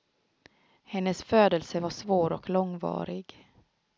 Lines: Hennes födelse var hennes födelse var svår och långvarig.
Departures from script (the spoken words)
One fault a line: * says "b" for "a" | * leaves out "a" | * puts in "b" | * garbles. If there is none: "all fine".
* leaves out "hennes födelse var"